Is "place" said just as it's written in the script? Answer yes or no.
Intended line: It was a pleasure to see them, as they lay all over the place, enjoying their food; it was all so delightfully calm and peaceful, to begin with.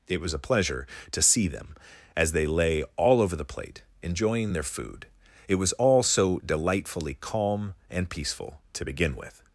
no